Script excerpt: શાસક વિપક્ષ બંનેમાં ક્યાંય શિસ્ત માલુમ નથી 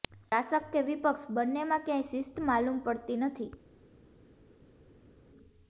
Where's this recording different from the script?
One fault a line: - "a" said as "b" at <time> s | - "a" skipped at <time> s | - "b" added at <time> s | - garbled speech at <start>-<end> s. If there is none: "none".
- "કે" added at 0.7 s
- "પડતી" added at 2.8 s